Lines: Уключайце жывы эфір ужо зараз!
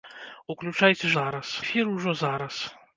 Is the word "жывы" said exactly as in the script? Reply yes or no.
no